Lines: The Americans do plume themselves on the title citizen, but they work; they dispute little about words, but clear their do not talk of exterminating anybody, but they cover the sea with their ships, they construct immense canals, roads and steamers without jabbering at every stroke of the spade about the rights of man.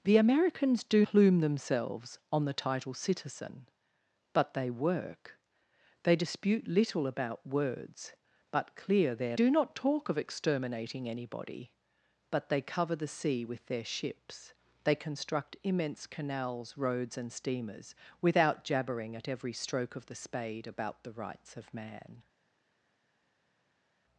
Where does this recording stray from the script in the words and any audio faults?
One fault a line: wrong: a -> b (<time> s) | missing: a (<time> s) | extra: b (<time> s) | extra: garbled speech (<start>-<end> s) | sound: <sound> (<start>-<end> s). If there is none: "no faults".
no faults